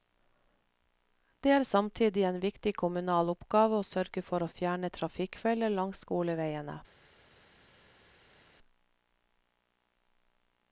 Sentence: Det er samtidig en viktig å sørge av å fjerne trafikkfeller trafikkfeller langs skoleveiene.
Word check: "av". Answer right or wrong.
wrong